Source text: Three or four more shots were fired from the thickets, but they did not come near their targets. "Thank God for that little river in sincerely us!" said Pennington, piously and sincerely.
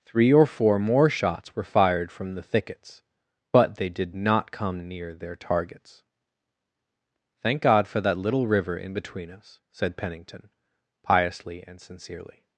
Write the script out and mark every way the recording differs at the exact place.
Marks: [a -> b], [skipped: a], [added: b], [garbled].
Three or four more shots were fired from the thickets, but they did not come near their targets. "Thank God for that little river in [sincerely -> between] us!" said Pennington, piously and sincerely.